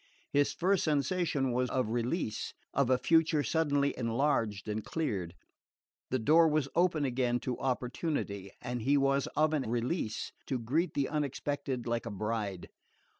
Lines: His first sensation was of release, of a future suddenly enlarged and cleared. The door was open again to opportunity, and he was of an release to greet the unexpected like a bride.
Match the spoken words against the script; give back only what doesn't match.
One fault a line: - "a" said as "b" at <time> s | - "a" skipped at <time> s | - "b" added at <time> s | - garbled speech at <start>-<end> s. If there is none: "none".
none